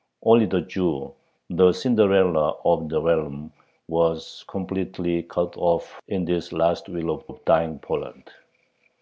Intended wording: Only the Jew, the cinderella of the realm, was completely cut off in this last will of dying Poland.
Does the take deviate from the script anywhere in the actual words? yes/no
yes